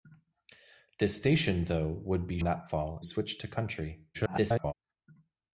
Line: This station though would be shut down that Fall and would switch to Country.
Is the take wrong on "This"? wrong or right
right